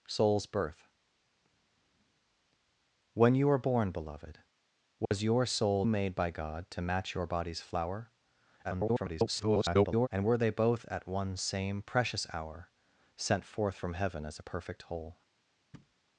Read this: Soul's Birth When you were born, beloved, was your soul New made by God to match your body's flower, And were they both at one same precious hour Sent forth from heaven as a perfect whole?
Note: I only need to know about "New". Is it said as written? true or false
false